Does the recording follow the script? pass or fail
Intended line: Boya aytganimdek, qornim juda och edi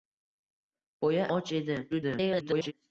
fail